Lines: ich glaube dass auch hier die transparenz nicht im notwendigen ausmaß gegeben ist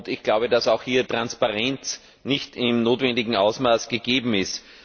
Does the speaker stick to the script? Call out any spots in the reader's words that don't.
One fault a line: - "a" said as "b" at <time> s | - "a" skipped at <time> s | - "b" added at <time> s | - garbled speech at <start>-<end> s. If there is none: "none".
- "die" skipped at 1.0 s